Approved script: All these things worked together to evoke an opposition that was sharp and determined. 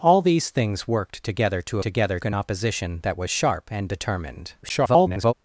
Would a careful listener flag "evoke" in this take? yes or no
yes